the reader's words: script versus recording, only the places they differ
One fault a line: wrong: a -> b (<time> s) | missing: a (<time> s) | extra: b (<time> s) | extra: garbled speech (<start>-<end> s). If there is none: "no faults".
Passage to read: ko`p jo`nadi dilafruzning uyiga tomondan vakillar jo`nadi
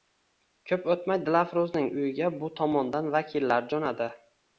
wrong: jo`nadi -> o`tmay (0.9 s)
extra: bu (2.4 s)